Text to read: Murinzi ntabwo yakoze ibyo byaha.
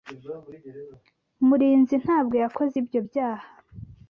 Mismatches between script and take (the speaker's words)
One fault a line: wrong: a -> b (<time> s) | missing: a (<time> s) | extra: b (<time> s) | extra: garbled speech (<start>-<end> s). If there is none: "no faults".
no faults